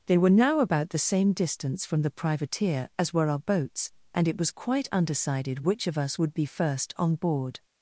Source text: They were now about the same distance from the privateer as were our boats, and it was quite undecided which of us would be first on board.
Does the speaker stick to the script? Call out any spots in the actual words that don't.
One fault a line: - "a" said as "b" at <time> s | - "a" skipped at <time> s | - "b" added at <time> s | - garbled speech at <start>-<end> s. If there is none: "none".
none